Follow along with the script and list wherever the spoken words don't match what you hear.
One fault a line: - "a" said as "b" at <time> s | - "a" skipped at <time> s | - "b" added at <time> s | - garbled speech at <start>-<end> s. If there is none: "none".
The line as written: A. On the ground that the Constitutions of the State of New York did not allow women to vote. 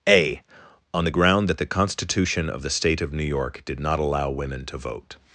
- "Constitutions" said as "Constitution" at 1.6 s